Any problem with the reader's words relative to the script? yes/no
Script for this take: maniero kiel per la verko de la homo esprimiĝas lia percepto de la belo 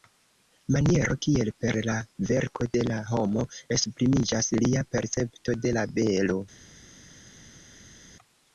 no